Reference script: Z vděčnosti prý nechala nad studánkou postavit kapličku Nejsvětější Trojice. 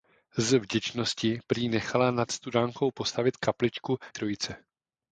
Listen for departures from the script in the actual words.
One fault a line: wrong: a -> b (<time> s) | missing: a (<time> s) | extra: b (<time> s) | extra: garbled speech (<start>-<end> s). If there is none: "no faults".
missing: Nejsvětější (4.0 s)